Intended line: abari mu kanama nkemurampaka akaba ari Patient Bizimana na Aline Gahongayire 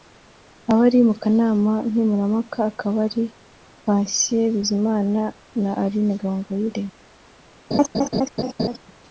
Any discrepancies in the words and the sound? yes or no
yes